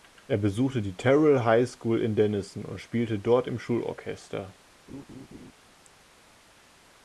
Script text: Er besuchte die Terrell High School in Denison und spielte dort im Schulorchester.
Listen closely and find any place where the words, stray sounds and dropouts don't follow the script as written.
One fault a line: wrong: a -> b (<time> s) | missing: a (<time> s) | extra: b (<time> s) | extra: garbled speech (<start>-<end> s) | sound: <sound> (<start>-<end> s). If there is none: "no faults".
sound: laugh (4.9-5.5 s)